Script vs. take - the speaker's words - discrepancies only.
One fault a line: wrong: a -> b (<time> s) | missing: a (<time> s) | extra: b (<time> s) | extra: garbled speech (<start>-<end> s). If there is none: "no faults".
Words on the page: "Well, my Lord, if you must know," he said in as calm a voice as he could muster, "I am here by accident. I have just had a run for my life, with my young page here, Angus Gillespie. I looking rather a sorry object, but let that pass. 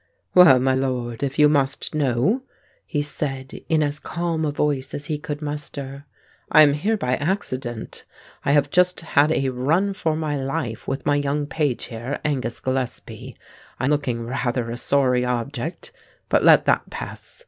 no faults